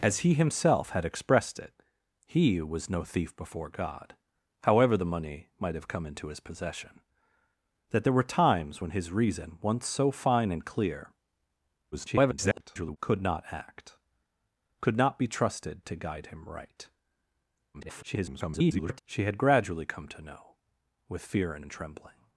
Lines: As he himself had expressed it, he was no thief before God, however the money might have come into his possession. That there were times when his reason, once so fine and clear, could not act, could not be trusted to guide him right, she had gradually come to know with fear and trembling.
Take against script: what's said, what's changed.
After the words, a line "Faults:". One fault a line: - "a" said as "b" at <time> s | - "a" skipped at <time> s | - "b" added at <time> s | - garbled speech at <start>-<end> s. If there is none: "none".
As he himself had expressed it, he was no thief before God, however the money might have come into his possession. That there were times when his reason, once so fine and clear, [garbled] could not act, could not be trusted to guide him right, [garbled] she had gradually come to know with fear and and trembling.
Faults:
- garbled speech at 11.9-13.0 s
- garbled speech at 17.7-19.0 s
- "and" added at 21.6 s